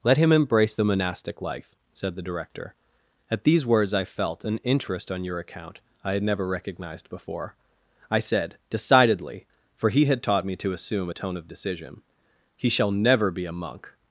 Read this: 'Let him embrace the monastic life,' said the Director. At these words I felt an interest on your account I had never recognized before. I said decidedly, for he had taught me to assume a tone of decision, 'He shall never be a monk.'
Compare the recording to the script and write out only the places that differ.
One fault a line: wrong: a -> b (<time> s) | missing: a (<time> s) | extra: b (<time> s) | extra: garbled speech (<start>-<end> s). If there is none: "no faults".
no faults